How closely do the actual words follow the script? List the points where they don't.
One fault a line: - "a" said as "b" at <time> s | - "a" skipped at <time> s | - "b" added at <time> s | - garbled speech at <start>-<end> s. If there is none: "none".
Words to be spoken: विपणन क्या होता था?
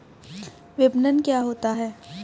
- "था" said as "है" at 1.7 s